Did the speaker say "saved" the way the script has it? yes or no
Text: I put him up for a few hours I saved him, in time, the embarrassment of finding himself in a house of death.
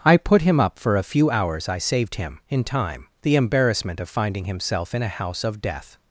yes